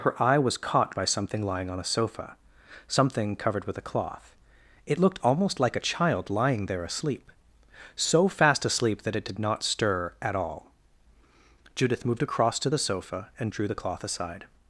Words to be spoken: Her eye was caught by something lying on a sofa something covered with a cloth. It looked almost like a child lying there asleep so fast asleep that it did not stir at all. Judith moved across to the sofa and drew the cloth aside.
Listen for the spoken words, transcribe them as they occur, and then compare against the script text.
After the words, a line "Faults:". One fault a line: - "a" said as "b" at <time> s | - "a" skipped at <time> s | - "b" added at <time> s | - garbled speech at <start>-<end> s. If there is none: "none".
Her eye was caught by something lying on a sofa something covered with a cloth. It looked almost like a child lying there asleep so fast asleep that it did not stir at all. Judith moved across to the sofa and drew the cloth aside.
Faults:
none